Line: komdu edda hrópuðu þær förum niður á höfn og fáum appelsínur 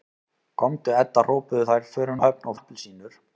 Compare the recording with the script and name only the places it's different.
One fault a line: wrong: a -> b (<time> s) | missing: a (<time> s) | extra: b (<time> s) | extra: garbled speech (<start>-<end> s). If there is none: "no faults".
missing: niður (2.2 s)
missing: fáum (2.6 s)